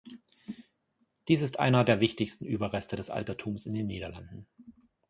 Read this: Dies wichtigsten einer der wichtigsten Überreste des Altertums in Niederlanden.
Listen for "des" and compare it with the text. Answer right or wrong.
right